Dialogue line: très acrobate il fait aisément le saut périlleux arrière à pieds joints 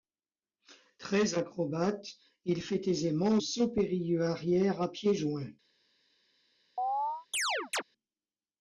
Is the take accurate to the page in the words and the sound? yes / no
no